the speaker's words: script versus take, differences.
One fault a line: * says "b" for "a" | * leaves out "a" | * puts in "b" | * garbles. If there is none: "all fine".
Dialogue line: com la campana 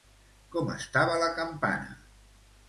* puts in "estava"